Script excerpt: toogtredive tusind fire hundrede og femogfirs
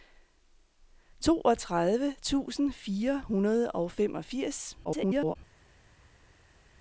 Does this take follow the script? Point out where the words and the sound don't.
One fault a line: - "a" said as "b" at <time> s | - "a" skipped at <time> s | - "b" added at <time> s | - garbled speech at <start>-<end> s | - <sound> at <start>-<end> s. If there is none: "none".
- garbled speech at 4.8-5.4 s